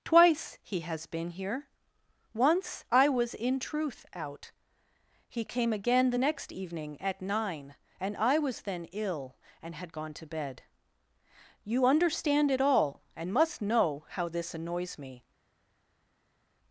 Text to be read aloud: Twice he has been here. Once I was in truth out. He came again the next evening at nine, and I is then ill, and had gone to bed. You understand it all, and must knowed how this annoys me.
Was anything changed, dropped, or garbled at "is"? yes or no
yes